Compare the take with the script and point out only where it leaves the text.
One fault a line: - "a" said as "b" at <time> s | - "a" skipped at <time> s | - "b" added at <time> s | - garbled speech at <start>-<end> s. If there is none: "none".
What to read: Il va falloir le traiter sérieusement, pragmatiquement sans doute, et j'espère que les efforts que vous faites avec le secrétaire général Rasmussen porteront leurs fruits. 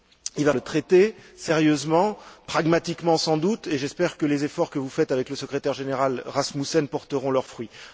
- "falloir" skipped at 0.5 s